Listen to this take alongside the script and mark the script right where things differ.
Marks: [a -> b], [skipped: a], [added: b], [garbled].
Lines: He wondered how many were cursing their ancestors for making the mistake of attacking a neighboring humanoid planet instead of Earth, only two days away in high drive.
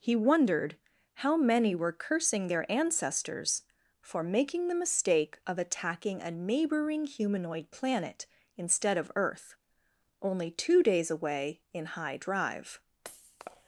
He wondered how many were cursing their ancestors for making the mistake of attacking a neighboring humanoid planet instead of Earth, only two days away in high drive.